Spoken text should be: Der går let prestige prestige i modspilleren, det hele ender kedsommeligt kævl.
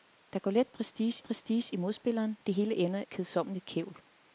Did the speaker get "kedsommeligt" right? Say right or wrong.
right